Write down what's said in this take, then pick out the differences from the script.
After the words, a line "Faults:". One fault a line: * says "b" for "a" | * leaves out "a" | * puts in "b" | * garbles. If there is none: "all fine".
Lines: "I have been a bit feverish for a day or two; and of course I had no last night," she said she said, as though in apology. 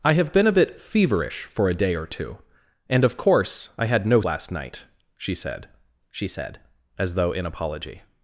"I have been a bit feverish for a day or two; and of course I had no last night," she said she said, as though in apology.
Faults:
all fine